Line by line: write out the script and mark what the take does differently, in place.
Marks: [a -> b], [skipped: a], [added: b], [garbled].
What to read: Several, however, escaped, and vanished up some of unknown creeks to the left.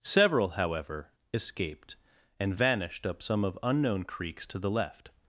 Several, however, escaped, and vanished up some of unknown creeks to the left.